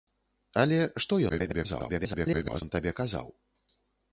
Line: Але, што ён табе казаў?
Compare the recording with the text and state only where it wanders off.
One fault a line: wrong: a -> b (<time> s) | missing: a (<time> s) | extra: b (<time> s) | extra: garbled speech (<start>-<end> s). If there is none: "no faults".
extra: garbled speech (1.3-2.6 s)